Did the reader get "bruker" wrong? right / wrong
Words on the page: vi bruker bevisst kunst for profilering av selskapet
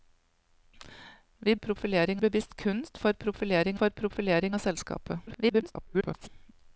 wrong